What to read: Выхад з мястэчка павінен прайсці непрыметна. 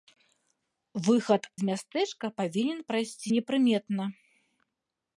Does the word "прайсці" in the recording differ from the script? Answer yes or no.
no